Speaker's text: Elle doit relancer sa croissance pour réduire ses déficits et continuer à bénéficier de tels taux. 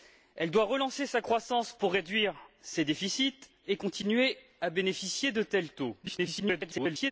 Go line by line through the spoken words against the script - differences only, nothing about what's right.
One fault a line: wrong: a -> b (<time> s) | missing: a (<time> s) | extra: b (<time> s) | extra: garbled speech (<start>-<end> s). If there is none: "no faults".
extra: garbled speech (6.0-7.1 s)